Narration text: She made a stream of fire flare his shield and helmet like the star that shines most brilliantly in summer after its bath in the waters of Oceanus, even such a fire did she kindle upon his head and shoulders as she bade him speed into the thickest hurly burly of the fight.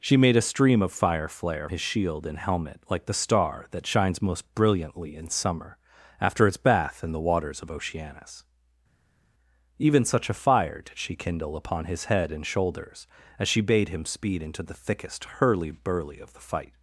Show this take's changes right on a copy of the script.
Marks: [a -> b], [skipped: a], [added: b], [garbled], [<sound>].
She made a stream of fire flare his shield and helmet like the star that shines most brilliantly in summer after its bath in the waters of Oceanus, even such a fire did she kindle upon his head and shoulders as she bade him speed into the thickest hurly burly of the fight.